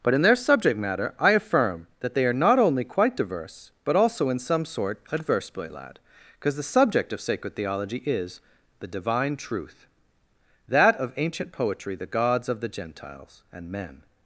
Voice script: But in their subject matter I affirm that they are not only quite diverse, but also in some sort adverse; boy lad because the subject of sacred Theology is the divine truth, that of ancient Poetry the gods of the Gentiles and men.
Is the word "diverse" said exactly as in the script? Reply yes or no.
yes